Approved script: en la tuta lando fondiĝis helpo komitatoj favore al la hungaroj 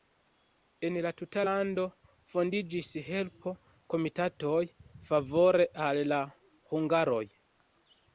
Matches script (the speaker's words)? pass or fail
pass